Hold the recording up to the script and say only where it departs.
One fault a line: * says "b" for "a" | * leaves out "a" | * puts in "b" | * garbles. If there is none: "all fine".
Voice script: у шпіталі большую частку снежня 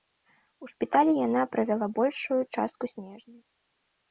* puts in "яна правяла"